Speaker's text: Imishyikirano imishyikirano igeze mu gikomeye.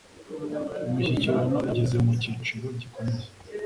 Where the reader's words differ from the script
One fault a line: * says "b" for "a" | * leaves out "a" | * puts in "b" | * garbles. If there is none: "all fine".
* leaves out "imishyikirano"
* puts in "cyiciro"